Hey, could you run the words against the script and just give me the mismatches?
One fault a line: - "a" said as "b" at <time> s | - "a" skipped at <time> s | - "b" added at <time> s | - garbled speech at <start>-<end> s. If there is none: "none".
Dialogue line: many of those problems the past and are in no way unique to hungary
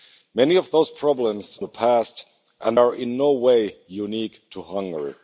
none